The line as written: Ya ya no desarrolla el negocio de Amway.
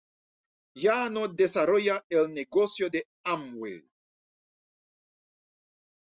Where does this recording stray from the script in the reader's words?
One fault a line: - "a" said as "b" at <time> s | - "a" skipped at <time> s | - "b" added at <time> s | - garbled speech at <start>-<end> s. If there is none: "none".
- "ya" skipped at 1.1 s